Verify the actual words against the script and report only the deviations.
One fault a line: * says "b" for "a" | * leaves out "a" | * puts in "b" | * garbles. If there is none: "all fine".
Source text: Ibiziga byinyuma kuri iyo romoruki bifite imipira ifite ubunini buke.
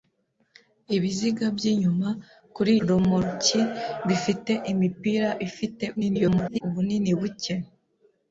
* leaves out "iyo"
* garbles